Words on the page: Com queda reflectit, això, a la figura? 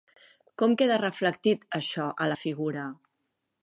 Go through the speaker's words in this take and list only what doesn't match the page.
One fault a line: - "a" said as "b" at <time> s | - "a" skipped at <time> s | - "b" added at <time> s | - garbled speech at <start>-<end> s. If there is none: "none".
none